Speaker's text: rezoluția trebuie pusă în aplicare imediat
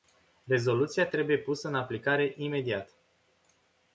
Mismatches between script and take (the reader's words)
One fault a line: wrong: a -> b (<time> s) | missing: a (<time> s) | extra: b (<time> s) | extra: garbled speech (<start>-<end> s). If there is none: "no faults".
no faults